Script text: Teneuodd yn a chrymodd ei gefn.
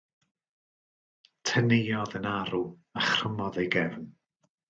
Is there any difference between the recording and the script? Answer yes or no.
yes